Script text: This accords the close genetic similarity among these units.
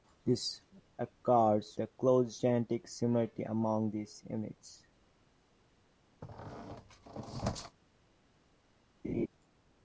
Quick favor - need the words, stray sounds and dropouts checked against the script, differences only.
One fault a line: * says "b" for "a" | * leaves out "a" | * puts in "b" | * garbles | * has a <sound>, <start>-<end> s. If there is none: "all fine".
* has a squeak, 6.2-7.8 s
* has a laugh, 9.0-9.3 s